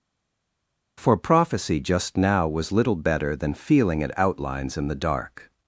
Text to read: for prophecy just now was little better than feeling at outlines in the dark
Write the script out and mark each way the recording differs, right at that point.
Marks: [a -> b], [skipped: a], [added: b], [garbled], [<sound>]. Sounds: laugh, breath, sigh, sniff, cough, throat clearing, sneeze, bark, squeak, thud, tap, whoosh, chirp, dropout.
for prophecy just now was little better than feeling at outlines in the dark